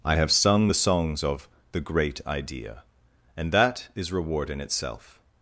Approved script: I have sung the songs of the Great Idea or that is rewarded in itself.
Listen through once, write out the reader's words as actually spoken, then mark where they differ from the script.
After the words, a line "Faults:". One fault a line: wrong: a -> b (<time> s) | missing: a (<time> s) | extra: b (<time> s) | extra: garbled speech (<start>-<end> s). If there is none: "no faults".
I have sung the songs of the Great Idea and that is reward in itself.
Faults:
wrong: or -> and (3.4 s)
wrong: rewarded -> reward (4.1 s)